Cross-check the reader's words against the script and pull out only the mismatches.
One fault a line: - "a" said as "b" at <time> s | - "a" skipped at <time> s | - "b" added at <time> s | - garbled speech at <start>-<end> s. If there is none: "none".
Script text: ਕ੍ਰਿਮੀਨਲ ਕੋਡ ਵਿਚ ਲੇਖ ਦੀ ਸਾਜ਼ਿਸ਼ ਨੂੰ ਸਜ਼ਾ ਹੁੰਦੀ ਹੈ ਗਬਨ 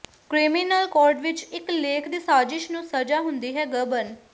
- "ਇਕ" added at 1.4 s